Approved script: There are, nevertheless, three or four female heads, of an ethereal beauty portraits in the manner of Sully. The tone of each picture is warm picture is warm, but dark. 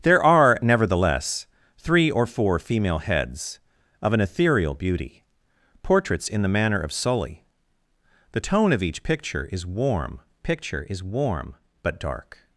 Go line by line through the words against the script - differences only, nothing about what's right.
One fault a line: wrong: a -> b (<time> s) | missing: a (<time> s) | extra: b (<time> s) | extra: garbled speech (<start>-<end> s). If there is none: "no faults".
no faults